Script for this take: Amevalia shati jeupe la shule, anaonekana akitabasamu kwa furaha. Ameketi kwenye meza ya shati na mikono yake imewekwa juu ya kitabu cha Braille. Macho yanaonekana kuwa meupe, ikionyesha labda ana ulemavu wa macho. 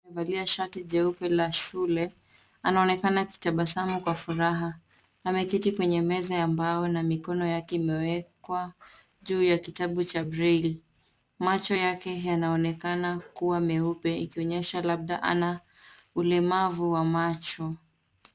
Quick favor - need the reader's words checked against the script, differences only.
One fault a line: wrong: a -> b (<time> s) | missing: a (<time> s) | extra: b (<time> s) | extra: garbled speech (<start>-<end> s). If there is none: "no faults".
wrong: shati -> mbao (6.5 s)
extra: yake (11.7 s)